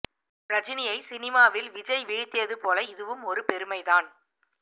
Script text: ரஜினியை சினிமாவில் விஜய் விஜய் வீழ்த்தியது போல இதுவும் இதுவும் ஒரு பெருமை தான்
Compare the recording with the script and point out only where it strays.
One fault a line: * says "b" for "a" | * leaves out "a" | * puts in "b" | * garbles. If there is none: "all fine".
* leaves out "விஜய்"
* leaves out "இதுவும்"